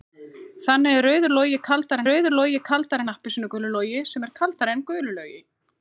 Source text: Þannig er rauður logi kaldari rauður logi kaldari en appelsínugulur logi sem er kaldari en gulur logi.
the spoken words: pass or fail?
pass